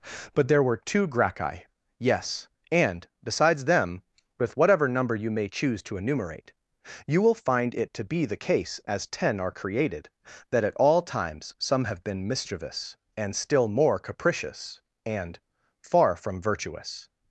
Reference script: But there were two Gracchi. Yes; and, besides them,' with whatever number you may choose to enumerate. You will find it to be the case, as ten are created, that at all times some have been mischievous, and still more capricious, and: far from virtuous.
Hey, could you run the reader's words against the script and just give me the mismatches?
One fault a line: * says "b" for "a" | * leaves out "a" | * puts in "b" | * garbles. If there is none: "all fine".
all fine